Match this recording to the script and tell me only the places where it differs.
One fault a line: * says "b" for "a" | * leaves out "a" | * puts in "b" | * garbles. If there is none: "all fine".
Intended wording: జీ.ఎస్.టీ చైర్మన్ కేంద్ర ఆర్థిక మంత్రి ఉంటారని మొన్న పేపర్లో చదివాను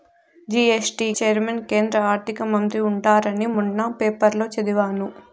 all fine